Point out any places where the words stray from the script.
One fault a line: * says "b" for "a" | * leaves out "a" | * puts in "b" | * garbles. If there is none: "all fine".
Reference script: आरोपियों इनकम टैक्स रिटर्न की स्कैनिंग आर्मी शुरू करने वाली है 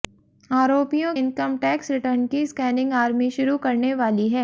all fine